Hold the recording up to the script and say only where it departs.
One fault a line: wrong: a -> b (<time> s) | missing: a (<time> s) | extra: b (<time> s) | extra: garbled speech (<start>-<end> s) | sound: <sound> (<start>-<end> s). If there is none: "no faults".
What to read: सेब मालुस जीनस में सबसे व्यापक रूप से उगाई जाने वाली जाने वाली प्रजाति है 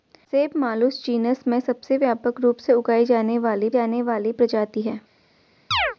sound: chirp (5.7-6.0 s)